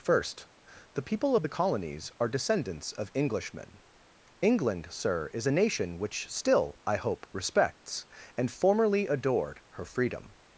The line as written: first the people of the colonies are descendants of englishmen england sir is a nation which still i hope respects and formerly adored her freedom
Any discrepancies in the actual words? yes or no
no